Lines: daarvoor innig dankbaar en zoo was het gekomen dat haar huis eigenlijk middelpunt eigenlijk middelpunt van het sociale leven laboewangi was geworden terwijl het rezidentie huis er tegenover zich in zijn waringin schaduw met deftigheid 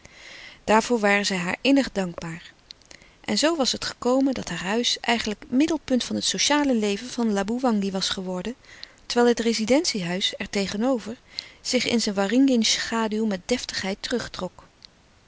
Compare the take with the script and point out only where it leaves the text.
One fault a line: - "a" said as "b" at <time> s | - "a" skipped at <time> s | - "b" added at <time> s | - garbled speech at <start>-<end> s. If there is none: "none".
- "waren zij haar" added at 1.0 s
- "eigenlijk middelpunt" skipped at 6.0 s
- "van" added at 7.1 s